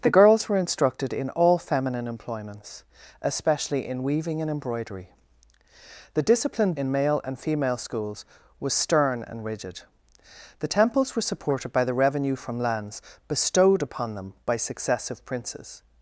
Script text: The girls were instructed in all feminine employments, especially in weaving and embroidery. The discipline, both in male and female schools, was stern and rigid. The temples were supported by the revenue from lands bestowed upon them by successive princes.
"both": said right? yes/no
no